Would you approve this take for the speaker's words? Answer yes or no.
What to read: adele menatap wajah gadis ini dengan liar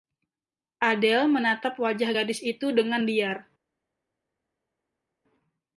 no